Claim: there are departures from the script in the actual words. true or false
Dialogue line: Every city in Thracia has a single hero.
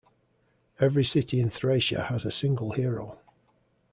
false